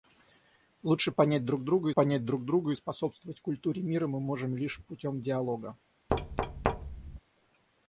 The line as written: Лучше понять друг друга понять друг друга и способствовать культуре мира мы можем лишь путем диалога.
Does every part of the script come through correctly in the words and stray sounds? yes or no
no